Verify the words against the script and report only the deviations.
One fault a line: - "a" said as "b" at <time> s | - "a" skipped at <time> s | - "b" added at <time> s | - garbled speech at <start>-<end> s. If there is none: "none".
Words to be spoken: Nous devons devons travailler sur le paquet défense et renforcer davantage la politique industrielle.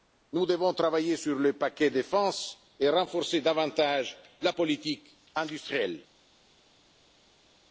- "devons" skipped at 0.7 s